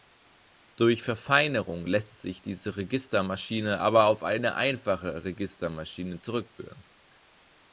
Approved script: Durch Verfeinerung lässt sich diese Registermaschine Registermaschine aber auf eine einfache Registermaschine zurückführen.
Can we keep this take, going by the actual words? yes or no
no